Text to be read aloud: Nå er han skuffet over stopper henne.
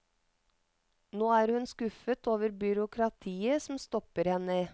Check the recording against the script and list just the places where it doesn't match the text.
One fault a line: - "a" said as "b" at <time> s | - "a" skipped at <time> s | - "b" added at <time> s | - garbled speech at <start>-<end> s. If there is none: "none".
- "han" said as "hun" at 1.5 s
- "byråkratiet som" added at 2.5 s